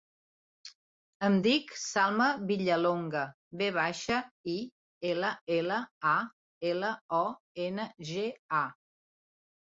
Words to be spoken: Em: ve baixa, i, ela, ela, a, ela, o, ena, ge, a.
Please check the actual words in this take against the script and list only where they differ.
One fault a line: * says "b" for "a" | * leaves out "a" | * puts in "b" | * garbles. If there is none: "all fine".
* puts in "dic Salma Villalonga"